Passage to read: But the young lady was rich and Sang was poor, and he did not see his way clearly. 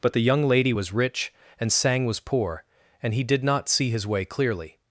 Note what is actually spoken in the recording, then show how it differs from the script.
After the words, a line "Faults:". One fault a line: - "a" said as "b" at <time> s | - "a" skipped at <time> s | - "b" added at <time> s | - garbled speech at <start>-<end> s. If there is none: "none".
But the young lady was rich and Sang was poor, and he did not see his way clearly.
Faults:
none